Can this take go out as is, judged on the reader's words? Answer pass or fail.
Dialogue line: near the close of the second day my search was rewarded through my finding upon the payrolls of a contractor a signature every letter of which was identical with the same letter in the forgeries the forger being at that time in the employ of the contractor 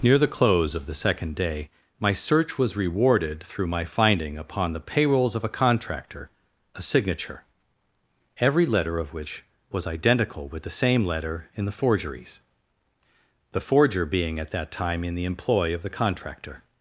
pass